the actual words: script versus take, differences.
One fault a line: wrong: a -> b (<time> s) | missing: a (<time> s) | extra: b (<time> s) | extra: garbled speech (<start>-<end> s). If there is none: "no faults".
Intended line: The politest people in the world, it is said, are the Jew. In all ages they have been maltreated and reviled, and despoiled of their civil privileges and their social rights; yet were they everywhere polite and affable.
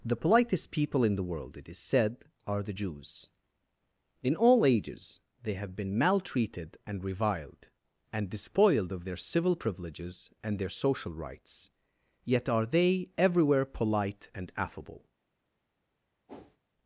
wrong: Jew -> Jews (2.7 s)
wrong: were -> are (12.5 s)